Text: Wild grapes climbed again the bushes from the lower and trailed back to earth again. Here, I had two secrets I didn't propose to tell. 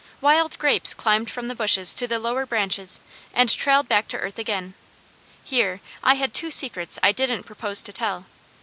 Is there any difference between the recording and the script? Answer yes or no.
yes